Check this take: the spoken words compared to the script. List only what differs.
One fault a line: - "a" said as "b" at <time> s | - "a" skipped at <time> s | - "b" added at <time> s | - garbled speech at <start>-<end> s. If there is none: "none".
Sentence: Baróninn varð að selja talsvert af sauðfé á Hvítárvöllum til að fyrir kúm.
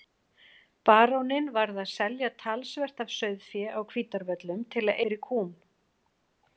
none